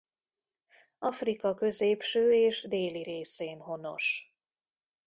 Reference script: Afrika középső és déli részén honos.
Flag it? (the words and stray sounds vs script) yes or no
no